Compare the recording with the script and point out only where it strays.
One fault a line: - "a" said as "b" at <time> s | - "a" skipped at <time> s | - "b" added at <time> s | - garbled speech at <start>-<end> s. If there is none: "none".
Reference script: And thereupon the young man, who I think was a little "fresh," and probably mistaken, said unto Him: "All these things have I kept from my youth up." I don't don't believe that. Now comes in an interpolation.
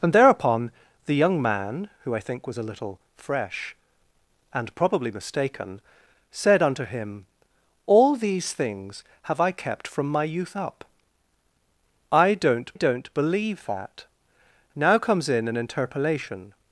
none